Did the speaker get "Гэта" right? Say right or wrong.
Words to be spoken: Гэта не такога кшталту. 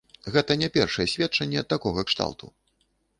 right